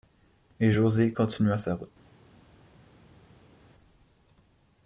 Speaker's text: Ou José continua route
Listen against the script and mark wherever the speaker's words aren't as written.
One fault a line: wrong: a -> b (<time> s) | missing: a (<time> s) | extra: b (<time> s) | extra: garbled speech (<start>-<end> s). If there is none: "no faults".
wrong: Ou -> Et (0.6 s)
extra: sa (1.6 s)